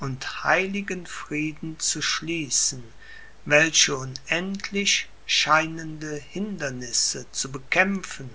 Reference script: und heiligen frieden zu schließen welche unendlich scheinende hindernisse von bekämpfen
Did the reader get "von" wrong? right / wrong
wrong